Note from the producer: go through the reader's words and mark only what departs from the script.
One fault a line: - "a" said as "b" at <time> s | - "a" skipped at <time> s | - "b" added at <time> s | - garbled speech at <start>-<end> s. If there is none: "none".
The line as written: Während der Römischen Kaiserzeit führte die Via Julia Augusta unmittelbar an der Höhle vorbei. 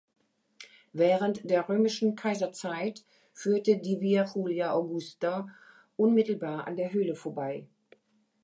none